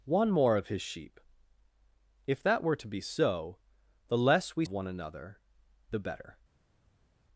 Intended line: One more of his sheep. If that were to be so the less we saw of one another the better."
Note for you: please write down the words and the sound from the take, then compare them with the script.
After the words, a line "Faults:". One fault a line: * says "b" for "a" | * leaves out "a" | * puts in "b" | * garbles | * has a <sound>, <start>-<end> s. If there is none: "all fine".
One more of his sheep. If that were to be so the less we of one another the better."
Faults:
* leaves out "saw"